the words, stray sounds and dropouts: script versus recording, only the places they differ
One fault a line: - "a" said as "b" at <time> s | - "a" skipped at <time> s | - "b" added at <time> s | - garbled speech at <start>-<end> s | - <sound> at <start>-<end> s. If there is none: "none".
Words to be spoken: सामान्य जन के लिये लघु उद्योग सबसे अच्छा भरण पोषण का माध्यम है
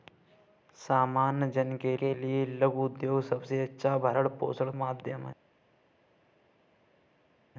- "के" added at 2.0 s
- "का" skipped at 4.7 s